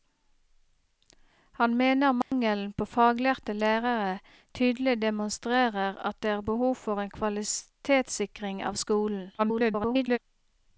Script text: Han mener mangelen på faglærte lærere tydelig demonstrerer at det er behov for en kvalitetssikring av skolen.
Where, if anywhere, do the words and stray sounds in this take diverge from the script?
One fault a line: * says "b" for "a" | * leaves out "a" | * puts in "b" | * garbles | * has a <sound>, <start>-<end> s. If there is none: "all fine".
* has a dropout, 2.2-2.3 s
* garbles